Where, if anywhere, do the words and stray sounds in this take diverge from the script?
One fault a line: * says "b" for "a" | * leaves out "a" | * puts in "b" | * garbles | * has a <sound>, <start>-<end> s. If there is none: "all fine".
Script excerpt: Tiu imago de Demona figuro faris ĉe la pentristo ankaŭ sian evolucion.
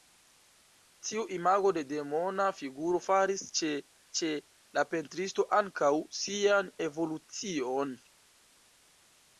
* puts in "ĉe"